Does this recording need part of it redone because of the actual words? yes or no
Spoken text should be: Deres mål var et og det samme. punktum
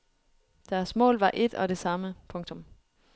no